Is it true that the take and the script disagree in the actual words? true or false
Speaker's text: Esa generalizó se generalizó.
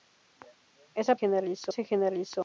false